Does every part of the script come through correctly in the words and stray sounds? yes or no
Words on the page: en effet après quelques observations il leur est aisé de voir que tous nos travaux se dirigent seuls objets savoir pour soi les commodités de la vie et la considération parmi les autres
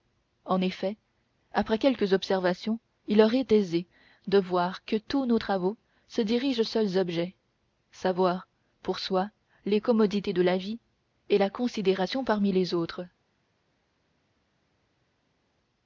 yes